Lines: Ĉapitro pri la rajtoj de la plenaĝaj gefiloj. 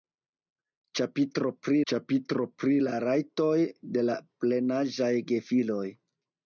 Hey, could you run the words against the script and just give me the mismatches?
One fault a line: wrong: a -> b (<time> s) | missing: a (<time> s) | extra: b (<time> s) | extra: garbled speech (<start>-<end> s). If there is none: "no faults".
extra: ĉapitro pri (1.9 s)